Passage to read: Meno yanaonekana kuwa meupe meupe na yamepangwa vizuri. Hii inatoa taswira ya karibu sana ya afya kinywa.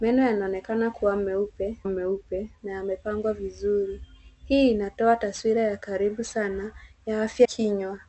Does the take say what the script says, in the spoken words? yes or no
yes